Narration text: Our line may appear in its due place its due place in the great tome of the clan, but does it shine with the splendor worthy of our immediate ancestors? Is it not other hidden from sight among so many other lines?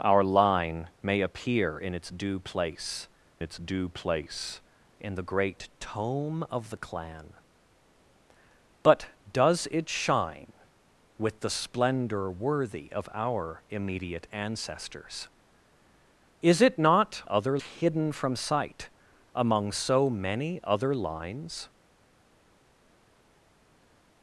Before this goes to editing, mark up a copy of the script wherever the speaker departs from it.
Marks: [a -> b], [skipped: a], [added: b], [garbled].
Our line may appear in its due place its due place in the great tome of the clan, but does it shine with the splendor worthy of our immediate ancestors? Is it not other hidden from sight among so many other lines?